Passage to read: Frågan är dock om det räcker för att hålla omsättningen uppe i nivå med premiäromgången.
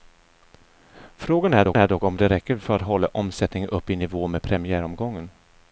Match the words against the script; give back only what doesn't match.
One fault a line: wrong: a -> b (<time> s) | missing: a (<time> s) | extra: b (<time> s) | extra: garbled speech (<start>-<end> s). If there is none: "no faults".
extra: är dock (1.8 s)